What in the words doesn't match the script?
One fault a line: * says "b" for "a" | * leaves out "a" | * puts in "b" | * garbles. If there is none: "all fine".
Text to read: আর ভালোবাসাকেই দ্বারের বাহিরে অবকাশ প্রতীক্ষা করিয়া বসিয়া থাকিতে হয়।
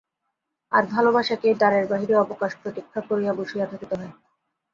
all fine